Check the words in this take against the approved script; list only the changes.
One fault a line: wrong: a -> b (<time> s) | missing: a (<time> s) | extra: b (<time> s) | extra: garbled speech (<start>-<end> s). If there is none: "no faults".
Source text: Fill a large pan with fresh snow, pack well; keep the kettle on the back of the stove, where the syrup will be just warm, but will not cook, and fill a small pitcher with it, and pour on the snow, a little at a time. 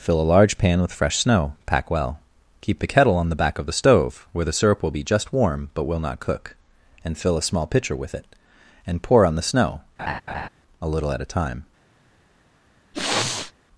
no faults